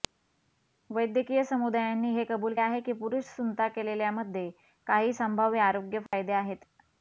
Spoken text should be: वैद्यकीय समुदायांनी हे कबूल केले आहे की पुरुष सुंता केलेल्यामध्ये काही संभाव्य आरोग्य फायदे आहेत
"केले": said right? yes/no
no